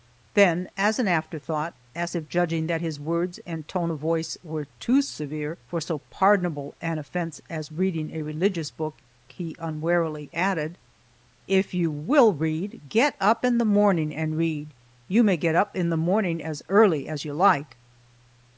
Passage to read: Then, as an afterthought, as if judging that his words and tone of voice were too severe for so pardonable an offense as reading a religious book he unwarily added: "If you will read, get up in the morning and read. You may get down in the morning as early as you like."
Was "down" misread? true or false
true